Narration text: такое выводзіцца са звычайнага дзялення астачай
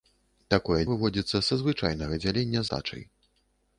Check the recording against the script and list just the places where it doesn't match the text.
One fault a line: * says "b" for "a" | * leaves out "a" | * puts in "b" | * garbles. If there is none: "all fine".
all fine